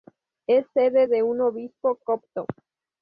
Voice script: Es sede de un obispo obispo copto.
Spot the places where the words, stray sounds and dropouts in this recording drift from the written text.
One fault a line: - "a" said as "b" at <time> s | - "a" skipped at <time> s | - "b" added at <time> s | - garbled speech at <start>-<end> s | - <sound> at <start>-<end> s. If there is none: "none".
- "obispo" skipped at 2.0 s